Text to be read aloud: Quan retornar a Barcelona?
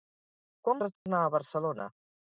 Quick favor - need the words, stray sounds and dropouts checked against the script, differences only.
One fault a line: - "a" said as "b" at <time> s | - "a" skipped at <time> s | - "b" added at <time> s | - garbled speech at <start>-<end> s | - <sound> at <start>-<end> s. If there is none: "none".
- dropout at 1.0-1.1 s